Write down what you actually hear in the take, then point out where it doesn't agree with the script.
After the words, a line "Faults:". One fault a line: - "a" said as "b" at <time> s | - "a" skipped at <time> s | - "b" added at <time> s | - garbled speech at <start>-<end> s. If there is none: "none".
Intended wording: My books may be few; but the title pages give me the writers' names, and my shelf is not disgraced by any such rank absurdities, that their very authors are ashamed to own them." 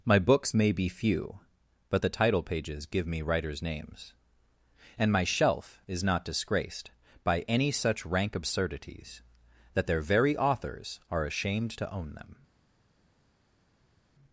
My books may be few; but the title pages give me writers' names, and my shelf is not disgraced by any such rank absurdities, that their very authors are ashamed to own them."
Faults:
- "the" skipped at 3.2 s